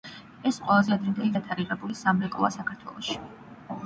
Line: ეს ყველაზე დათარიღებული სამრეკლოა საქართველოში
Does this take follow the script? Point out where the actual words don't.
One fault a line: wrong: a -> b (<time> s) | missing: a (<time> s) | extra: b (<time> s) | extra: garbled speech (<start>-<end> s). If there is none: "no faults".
extra: ადრინდელი (0.9 s)